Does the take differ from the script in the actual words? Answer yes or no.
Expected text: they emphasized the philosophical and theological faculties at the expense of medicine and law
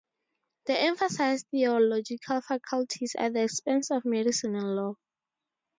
yes